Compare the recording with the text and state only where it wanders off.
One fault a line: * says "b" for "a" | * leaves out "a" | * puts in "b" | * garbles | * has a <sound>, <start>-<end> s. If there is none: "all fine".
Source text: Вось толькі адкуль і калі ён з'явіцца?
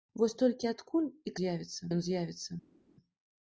* says "з'явіцца" for "калі"